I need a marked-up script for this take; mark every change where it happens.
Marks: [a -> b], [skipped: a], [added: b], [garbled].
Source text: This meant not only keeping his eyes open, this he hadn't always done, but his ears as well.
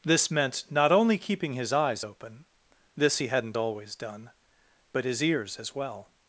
This meant not only keeping his eyes open, this he hadn't always done, but his ears as well.